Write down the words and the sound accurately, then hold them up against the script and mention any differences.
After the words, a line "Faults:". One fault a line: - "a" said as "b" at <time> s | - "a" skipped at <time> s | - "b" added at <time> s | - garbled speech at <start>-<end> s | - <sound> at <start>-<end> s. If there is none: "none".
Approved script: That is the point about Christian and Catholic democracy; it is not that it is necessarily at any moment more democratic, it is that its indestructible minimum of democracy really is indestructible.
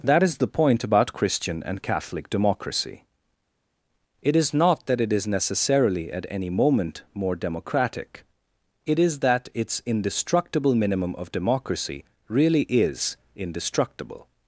That is the point about Christian and Catholic democracy; it is not that it is necessarily at any moment more democratic, it is that its indestructible minimum of democracy really is indestructible.
Faults:
none